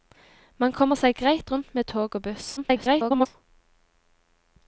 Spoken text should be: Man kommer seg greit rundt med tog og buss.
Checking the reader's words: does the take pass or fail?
fail